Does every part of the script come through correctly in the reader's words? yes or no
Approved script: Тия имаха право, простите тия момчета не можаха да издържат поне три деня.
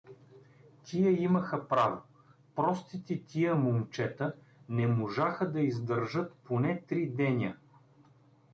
yes